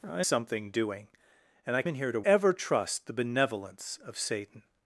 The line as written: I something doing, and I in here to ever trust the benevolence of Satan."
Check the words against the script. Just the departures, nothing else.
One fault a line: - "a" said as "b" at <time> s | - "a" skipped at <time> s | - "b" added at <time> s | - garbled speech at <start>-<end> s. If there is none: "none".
none